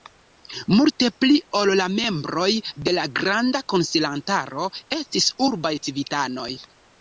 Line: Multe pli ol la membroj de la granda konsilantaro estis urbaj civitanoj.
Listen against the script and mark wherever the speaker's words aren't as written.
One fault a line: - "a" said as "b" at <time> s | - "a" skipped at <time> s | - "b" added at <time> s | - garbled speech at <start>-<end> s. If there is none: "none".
none